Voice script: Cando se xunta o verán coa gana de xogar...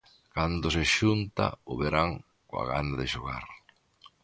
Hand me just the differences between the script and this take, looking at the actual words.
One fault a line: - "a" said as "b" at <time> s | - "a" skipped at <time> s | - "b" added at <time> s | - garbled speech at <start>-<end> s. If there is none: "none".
none